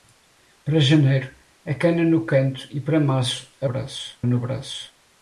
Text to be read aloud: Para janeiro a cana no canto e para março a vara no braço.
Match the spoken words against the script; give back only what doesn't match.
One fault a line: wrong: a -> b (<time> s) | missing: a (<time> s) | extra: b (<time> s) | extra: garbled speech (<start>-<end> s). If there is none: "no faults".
wrong: vara -> braço (3.7 s)